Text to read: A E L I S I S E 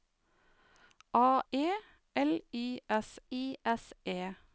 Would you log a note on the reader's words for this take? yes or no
no